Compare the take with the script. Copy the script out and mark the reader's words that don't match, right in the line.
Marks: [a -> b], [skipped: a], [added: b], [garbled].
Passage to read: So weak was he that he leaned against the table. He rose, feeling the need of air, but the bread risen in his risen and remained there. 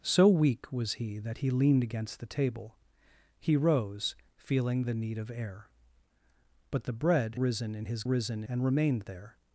So weak was he that he leaned against the table. He rose, feeling the need of air, but the bread risen in his risen and remained there.